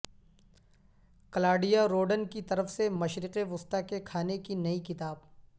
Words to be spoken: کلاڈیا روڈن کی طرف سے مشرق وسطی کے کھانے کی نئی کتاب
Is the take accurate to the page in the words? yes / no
yes